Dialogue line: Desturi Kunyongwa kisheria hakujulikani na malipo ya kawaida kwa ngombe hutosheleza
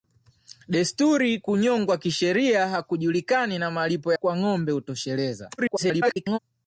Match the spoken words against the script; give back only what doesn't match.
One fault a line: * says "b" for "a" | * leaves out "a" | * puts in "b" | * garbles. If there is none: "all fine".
* leaves out "ya kawaida"
* garbles